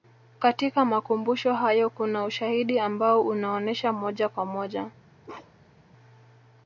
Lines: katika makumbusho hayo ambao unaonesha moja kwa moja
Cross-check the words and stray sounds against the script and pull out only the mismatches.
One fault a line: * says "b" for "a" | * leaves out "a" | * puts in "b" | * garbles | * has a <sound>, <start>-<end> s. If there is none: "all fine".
* puts in "kuna ushahidi"
* has a bark, 5.2-5.8 s